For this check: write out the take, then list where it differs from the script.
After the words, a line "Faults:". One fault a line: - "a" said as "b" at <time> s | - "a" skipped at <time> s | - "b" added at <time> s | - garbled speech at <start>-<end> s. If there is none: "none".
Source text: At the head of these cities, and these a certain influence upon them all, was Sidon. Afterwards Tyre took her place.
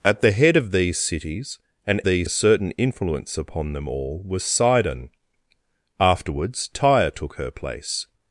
At the head of these cities, and these a certain influence upon them all, was Sidon. Afterwards Tyre took her place.
Faults:
none